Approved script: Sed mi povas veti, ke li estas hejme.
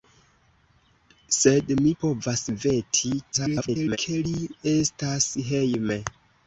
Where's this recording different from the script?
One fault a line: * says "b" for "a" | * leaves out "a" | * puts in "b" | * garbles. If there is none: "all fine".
* garbles